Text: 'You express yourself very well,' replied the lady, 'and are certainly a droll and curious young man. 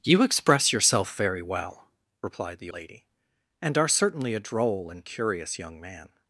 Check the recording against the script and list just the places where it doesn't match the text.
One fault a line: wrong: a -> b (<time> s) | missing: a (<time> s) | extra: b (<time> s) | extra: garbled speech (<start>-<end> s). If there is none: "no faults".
no faults